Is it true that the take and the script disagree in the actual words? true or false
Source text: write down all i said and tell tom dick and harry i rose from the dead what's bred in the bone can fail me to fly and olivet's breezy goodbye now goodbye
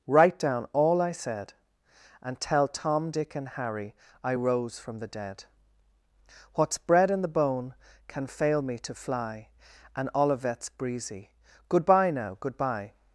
false